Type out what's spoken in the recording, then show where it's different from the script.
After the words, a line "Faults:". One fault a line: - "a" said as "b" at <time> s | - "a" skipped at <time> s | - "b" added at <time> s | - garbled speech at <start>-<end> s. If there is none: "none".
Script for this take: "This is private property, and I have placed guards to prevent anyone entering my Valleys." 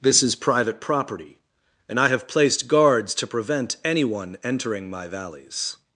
"This is private property, and I have placed guards to prevent anyone entering my Valleys."
Faults:
none